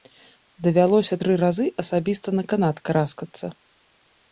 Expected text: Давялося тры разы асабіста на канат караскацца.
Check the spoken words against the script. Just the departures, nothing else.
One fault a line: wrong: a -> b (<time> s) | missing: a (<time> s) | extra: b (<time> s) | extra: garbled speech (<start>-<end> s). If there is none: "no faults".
no faults